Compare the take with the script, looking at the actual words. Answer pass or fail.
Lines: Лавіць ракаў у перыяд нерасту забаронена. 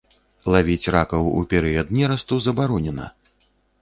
pass